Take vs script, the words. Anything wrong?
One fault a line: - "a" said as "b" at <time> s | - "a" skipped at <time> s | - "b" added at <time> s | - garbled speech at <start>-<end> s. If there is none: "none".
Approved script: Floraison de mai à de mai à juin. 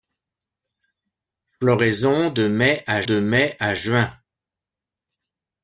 none